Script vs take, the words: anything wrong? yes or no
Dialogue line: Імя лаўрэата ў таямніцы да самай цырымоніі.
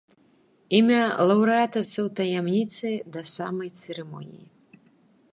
no